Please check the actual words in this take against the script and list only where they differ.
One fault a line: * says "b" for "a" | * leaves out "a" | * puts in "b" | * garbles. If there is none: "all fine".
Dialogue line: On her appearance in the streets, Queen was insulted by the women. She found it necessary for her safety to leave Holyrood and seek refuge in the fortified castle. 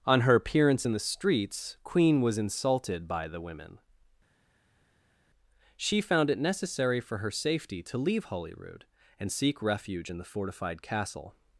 all fine